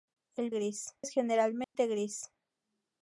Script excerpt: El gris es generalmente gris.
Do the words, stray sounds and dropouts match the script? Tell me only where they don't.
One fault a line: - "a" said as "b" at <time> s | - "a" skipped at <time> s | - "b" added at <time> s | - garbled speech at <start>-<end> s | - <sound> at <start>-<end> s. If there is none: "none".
- dropout at 1.6-1.8 s